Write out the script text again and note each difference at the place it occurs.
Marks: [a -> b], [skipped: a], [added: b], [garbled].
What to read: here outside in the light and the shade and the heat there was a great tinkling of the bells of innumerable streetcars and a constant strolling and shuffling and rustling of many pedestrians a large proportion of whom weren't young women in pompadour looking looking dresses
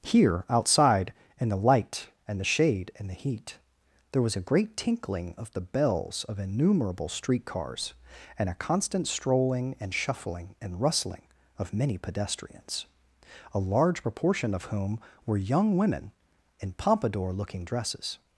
here outside in the light and the shade and the heat there was a great tinkling of the bells of innumerable streetcars and a constant strolling and shuffling and rustling of many pedestrians a large proportion of whom [weren't -> were] young women in pompadour looking [skipped: looking] dresses